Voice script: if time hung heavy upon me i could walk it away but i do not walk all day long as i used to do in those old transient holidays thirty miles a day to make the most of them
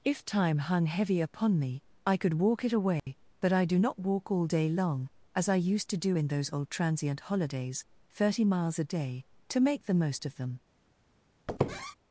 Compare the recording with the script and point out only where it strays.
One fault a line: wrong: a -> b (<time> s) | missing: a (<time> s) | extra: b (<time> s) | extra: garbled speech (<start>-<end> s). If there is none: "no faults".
no faults